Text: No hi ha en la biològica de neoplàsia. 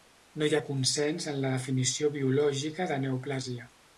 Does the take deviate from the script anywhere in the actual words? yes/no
yes